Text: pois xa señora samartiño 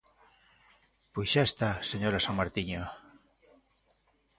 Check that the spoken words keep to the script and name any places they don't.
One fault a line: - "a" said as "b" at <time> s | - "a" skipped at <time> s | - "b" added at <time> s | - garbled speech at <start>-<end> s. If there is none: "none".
- "está" added at 1.5 s